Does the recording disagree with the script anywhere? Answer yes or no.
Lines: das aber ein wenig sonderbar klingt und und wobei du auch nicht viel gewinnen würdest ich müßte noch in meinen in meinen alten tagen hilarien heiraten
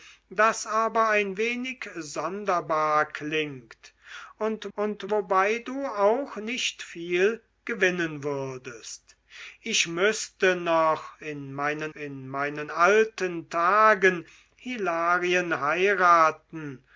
no